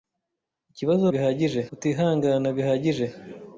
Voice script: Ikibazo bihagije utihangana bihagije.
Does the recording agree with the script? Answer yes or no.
yes